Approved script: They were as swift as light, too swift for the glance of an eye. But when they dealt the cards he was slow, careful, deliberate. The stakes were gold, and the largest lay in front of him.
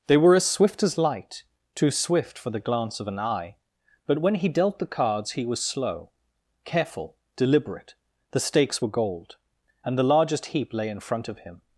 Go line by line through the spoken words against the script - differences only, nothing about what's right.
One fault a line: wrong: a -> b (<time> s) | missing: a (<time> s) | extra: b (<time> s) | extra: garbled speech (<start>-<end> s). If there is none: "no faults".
wrong: they -> he (4.3 s)
extra: heap (10.5 s)